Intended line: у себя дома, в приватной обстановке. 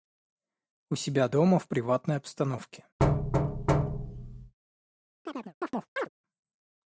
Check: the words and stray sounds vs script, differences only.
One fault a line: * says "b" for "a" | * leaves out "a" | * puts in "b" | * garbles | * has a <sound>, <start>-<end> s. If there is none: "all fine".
* has a thud, 3.0-4.5 s
* has a chirp, 5.3-6.1 s